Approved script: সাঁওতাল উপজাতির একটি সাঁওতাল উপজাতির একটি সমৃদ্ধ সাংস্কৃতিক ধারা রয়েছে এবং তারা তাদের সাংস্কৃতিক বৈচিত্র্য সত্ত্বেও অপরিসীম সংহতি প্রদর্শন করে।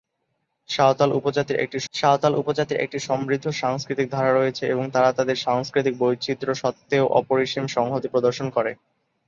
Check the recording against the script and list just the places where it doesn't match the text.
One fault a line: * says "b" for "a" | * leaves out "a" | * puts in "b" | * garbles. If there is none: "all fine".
all fine